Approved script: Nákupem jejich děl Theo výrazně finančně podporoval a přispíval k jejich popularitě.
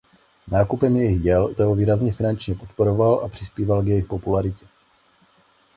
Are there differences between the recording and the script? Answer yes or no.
no